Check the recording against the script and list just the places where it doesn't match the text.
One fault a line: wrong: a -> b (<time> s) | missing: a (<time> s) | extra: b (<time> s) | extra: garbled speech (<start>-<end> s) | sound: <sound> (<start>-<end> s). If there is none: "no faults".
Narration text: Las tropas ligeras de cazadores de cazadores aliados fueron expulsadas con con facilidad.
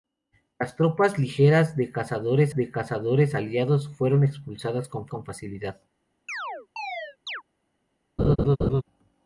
sound: chirp (6.3-7.4 s)
sound: laugh (8.2-8.8 s)